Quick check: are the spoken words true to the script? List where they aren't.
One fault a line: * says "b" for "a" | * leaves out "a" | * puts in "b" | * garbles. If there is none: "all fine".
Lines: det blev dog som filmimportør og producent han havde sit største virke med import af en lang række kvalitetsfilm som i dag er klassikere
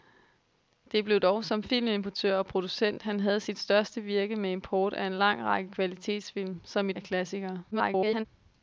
* leaves out "dag"
* garbles